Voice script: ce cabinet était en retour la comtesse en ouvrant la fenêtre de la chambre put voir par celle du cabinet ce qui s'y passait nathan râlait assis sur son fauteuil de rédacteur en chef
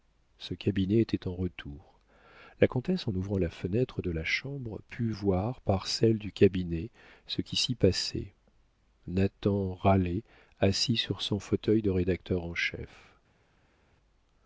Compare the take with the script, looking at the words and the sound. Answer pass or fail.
pass